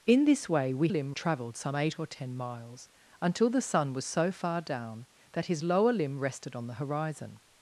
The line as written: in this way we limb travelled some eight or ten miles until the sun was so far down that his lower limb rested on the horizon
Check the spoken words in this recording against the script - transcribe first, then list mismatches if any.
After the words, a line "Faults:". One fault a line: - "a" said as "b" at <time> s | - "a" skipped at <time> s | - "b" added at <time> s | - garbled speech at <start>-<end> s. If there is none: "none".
in this way we limb travelled some eight or ten miles until the sun was so far down that his lower limb rested on the horizon
Faults:
none